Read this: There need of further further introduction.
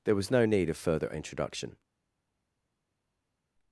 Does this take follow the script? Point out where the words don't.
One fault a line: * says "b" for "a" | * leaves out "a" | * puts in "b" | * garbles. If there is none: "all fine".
* puts in "was no"
* leaves out "further"